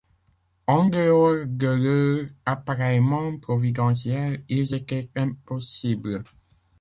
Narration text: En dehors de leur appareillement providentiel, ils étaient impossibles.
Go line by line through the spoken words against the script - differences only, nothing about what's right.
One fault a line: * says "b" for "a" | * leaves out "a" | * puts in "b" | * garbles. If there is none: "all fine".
all fine